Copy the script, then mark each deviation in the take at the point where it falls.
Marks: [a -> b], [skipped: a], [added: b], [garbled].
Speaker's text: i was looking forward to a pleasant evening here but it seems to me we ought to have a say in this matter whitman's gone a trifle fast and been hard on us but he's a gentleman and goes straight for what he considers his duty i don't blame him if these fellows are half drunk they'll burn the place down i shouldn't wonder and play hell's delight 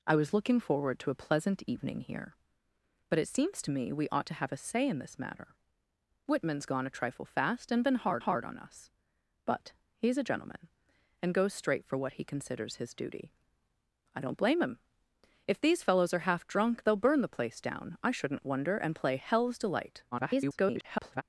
i was looking forward to a pleasant evening here but it seems to me we ought to have a say in this matter whitman's gone a trifle fast and been hard [added: hard] on us but he's a gentleman and goes straight for what he considers his duty i don't blame him if these fellows are half drunk they'll burn the place down i shouldn't wonder and play hell's delight [garbled]